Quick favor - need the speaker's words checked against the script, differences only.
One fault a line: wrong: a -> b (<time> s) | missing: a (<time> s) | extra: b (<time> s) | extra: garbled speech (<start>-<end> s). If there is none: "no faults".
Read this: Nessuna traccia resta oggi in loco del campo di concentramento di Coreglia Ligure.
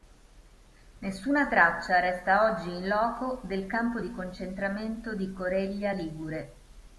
no faults